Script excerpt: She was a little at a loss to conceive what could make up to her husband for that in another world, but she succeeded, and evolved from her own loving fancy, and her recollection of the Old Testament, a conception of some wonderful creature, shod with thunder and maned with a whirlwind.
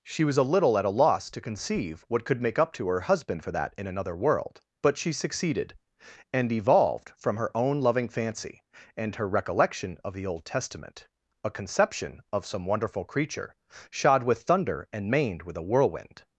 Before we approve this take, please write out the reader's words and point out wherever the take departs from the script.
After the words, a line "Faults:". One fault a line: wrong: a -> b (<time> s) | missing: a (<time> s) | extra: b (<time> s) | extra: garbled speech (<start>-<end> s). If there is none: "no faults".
She was a little at a loss to conceive what could make up to her husband for that in another world, but she succeeded, and evolved from her own loving fancy, and her recollection of the Old Testament, a conception of some wonderful creature, shod with thunder and maned with a whirlwind.
Faults:
no faults